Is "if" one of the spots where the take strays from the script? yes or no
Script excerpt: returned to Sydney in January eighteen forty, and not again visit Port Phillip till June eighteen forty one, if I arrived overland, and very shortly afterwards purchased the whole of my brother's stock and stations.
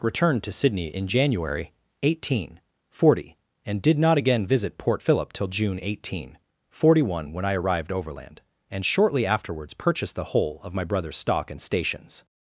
yes